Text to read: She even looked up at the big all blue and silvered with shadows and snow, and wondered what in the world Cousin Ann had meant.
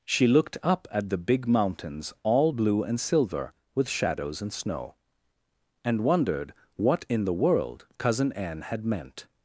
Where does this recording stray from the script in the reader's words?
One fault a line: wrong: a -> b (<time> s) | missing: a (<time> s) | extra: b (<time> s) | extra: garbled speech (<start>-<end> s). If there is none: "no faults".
missing: even (0.3 s)
extra: mountains (1.5 s)
wrong: silvered -> silver (3.0 s)